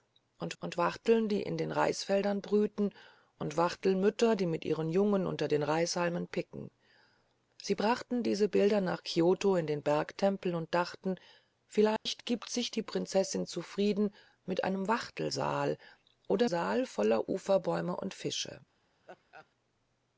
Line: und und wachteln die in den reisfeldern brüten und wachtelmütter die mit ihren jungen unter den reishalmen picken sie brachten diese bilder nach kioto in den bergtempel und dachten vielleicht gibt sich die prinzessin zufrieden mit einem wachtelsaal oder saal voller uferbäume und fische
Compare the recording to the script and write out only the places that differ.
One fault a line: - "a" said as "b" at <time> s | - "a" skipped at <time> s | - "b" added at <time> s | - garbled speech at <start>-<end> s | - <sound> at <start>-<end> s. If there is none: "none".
- dropout at 12.0-12.1 s
- laugh at 19.0-19.5 s